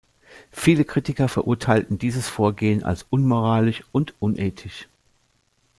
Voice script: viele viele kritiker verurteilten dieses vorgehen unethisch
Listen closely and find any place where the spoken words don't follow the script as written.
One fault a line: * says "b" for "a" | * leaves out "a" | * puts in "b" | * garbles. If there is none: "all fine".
* leaves out "viele"
* puts in "als unmoralisch und"